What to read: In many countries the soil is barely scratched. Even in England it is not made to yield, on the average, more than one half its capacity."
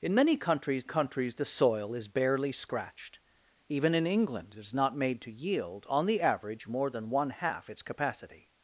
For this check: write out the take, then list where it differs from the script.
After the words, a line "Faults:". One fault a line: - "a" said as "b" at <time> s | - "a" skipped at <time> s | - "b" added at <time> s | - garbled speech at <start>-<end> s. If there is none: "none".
In many countries countries the soil is barely scratched. Even in England it is not made to yield, on the average, more than one half its capacity."
Faults:
- "countries" added at 0.8 s